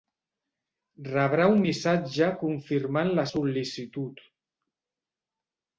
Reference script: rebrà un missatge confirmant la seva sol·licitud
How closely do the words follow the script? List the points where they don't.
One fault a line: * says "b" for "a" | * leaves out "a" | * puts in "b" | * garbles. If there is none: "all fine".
* leaves out "seva"